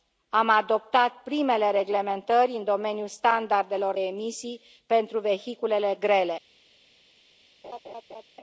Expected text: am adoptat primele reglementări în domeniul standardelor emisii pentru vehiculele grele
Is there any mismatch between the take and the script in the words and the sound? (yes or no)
yes